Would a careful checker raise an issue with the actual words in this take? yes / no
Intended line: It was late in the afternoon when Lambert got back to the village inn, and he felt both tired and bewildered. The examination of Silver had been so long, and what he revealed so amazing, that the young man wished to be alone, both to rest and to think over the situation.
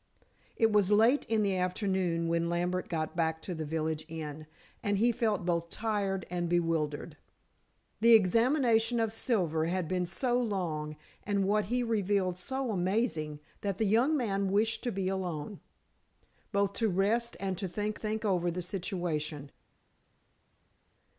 yes